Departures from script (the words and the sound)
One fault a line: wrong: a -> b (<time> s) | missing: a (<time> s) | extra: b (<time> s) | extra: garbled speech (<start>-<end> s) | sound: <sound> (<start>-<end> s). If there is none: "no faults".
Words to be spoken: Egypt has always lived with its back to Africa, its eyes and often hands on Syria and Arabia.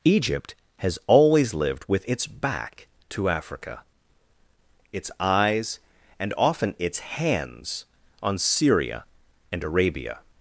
extra: its (6.8 s)